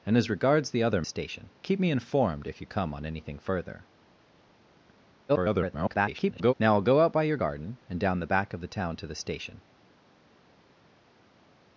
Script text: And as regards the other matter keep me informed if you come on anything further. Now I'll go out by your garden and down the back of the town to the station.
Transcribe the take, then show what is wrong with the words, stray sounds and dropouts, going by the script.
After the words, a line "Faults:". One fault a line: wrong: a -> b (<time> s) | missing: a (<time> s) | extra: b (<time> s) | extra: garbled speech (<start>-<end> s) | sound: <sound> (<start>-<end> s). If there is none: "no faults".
And as regards the other station keep me informed if you come on anything further. [garbled] Now I'll go out by your garden and down the back of the town to the station.
Faults:
wrong: matter -> station (1.0 s)
extra: garbled speech (5.3-6.5 s)